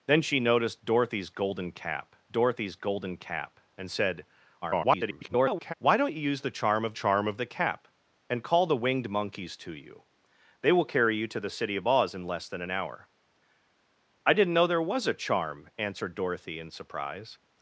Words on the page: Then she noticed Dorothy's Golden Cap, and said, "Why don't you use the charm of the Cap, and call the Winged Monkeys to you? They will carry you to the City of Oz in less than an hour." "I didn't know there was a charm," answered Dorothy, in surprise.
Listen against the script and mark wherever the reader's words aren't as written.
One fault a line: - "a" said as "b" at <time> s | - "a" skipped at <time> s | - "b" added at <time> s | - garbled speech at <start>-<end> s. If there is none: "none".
- "Dorothy's Golden Cap" added at 2.3 s
- garbled speech at 4.6-5.7 s
- "charm of" added at 7.0 s